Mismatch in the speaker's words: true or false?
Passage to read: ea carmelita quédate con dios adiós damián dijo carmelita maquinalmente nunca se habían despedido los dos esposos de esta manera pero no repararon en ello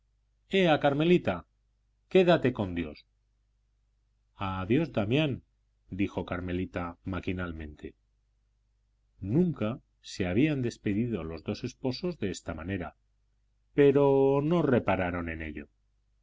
false